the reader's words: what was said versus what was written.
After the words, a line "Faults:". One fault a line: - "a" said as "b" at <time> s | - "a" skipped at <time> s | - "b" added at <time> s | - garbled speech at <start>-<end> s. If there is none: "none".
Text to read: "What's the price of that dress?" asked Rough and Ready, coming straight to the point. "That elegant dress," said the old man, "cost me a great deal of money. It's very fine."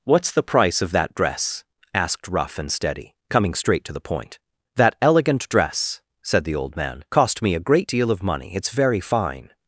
"What's the price of that dress?" asked Rough and Steady, coming straight to the point. "That elegant dress," said the old man, "cost me a great deal of money. It's very fine."
Faults:
- "Ready" said as "Steady" at 2.7 s